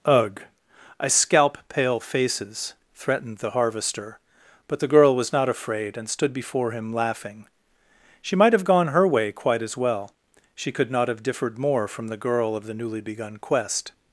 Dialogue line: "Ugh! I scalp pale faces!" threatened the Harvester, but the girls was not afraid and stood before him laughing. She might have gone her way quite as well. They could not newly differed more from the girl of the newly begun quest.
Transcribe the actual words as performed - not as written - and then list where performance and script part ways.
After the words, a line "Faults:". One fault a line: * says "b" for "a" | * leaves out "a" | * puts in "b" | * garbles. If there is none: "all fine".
"Ugh! I scalp pale faces!" threatened the Harvester, but the girl was not afraid and stood before him laughing. She might have gone her way quite as well. She could not have differed more from the girl of the newly begun quest.
Faults:
* says "girl" for "girls"
* says "She" for "They"
* says "have" for "newly"